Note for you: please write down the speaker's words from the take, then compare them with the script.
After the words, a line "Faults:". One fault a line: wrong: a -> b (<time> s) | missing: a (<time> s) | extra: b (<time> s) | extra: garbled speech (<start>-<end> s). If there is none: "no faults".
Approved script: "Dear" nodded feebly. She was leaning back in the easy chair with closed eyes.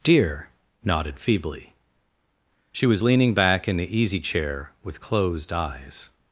"Dear" nodded feebly. She was leaning back in the easy chair with closed eyes.
Faults:
no faults